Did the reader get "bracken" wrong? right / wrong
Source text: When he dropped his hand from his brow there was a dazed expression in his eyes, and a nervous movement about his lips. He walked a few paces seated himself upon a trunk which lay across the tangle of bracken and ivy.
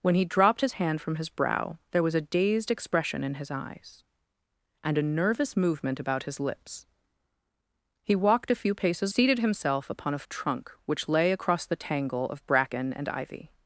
right